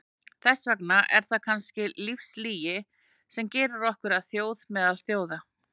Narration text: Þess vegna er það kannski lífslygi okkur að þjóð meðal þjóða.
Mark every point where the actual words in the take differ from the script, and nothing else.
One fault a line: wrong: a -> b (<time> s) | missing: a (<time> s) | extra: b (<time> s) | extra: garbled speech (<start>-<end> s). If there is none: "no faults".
extra: sem gerir (3.4 s)